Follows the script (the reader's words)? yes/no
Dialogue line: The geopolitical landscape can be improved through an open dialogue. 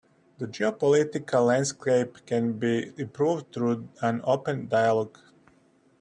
yes